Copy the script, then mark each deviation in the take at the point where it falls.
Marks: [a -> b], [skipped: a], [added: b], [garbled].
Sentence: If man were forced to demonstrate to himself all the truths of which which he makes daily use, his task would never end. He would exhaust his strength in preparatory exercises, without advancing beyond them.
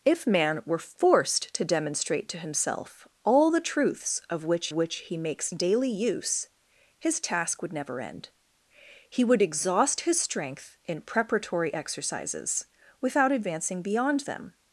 If man were forced to demonstrate to himself all the truths of which which he makes daily use, his task would never end. He would exhaust his strength in preparatory exercises, without advancing beyond them.